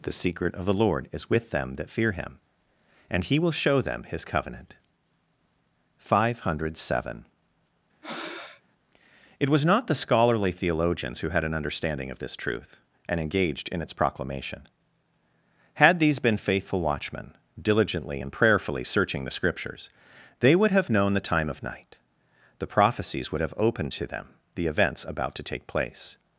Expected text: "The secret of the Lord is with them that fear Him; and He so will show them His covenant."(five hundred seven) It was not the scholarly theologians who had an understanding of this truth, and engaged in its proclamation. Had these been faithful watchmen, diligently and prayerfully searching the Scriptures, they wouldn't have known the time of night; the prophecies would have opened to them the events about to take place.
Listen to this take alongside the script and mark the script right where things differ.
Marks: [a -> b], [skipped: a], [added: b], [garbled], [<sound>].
"The secret of the Lord is with them that fear Him; and He [skipped: so] will show them His covenant."(five hundred seven) [breath] It was not the scholarly theologians who had an understanding of this truth, and engaged in its proclamation. Had these been faithful watchmen, diligently and prayerfully searching the Scriptures, they [wouldn't -> would] have known the time of night; the prophecies would have opened to them the events about to take place.